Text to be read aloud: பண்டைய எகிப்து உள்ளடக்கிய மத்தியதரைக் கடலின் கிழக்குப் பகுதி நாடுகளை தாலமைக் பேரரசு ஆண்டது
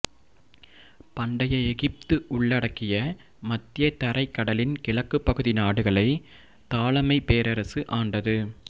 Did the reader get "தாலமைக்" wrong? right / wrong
right